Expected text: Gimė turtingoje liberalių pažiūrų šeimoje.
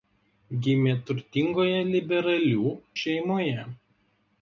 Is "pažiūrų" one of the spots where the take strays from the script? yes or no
yes